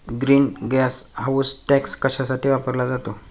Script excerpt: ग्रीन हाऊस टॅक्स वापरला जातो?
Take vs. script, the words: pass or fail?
fail